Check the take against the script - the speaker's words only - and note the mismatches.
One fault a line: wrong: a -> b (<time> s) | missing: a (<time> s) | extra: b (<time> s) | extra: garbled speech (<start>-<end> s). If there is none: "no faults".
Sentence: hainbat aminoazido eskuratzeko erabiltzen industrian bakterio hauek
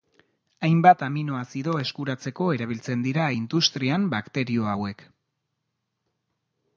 extra: dira (3.1 s)